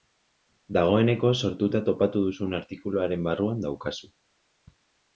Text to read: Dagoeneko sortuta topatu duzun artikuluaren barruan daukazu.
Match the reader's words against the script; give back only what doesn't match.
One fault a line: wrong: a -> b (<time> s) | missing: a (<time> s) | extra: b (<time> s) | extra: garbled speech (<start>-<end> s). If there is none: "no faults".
no faults